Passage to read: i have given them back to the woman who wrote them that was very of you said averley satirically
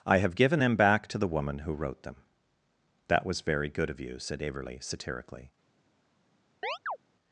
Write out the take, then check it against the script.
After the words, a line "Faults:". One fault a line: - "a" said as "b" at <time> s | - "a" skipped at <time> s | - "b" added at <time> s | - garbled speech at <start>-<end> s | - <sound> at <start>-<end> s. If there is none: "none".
i have given them back to the woman who wrote them that was very good of you said averley satirically
Faults:
- "good" added at 3.7 s
- chirp at 6.6-7.0 s